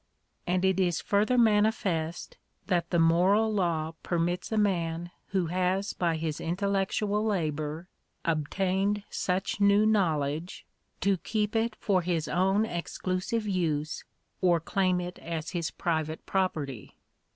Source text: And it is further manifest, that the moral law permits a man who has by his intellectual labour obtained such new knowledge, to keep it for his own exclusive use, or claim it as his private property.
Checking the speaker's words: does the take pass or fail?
pass